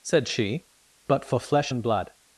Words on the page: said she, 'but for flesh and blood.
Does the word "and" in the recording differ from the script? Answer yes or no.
no